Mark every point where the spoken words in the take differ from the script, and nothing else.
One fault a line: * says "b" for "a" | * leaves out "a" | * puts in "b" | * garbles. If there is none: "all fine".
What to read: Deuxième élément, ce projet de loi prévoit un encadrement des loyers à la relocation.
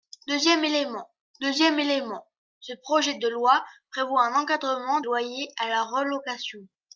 * puts in "deuxième élément"
* leaves out "des"